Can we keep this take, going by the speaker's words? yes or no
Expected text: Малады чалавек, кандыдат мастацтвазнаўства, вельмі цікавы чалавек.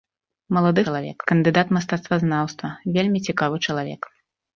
yes